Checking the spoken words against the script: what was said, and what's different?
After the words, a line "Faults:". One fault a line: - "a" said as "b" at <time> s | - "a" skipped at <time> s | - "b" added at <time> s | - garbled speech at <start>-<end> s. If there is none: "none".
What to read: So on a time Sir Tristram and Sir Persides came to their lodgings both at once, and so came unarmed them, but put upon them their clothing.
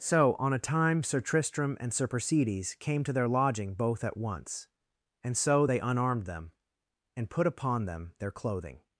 So on a time Sir Tristram and Sir Persides came to their lodging both at once, and so they unarmed them, and put upon them their clothing.
Faults:
- "lodgings" said as "lodging" at 3.3 s
- "came" said as "they" at 5.6 s
- "but" said as "and" at 7.2 s